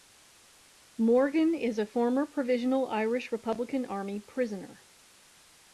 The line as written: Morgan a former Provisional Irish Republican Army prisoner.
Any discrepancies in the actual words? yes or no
yes